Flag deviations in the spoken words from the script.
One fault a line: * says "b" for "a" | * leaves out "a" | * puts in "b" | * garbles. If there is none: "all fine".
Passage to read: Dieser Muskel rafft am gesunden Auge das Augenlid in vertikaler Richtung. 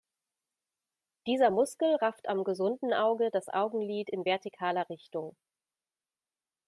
all fine